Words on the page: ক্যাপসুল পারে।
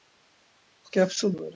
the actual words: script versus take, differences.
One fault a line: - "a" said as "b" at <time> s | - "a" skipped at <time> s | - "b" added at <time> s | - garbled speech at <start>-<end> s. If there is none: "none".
none